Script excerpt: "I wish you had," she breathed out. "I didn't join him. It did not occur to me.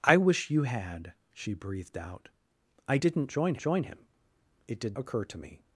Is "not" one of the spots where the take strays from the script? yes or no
yes